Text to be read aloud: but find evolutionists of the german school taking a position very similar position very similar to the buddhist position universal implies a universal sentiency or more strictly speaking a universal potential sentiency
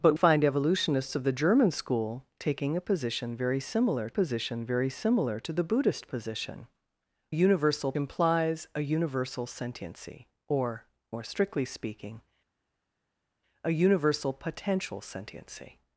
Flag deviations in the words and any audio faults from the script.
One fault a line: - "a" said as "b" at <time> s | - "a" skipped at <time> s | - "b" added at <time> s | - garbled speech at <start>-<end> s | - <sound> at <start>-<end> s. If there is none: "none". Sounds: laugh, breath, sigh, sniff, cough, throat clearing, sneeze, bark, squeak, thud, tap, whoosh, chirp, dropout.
none